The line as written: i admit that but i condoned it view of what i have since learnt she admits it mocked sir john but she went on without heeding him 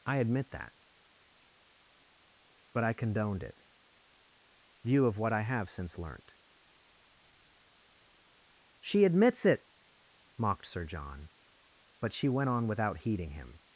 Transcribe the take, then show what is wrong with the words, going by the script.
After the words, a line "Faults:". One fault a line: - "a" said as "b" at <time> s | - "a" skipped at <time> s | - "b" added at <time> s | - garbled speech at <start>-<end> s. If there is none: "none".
i admit that but i condoned it view of what i have since learnt she admits it mocked sir john but she went on without heeding him
Faults:
none